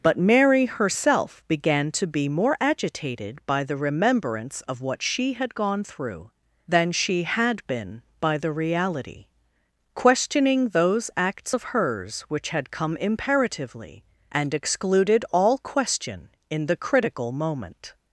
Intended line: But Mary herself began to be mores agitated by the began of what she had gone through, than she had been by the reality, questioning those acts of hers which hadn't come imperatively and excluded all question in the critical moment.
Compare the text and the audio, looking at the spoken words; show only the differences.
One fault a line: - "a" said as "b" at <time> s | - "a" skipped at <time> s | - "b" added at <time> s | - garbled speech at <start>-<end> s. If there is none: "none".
- "mores" said as "more" at 2.3 s
- "began" said as "remembrance" at 3.8 s
- "hadn't" said as "had" at 12.5 s